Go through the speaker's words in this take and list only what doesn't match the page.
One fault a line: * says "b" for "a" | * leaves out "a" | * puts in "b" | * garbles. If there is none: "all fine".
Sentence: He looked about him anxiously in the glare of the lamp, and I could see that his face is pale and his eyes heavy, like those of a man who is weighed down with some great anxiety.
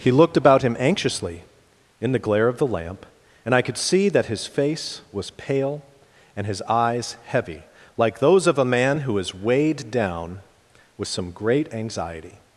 * says "was" for "is"